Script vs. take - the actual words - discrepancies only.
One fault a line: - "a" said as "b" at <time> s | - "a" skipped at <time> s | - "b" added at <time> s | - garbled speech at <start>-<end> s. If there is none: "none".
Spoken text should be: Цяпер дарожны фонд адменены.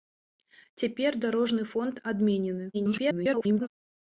- garbled speech at 2.7-3.7 s